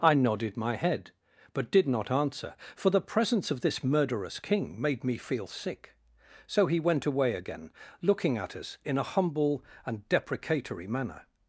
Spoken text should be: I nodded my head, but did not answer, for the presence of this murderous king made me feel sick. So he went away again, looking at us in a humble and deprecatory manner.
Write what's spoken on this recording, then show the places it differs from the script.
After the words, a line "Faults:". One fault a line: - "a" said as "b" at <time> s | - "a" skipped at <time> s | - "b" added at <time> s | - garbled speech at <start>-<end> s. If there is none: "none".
I nodded my head, but did not answer, for the presence of this murderous king made me feel sick. So he went away again, looking at us in a humble and deprecatory manner.
Faults:
none